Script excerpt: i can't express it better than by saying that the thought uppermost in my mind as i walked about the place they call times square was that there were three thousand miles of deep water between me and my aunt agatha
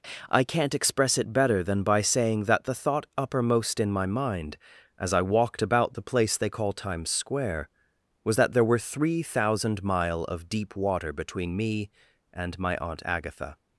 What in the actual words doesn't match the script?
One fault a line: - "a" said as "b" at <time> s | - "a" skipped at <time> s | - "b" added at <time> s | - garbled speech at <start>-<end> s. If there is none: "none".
- "miles" said as "mile" at 9.8 s